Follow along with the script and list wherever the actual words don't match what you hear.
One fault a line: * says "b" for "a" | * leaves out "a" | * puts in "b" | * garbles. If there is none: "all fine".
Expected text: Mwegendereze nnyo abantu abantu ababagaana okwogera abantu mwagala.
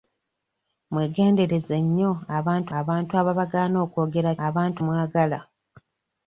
all fine